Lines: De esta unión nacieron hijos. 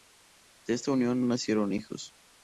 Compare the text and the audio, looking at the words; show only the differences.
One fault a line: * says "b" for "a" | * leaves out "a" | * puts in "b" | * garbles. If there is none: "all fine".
all fine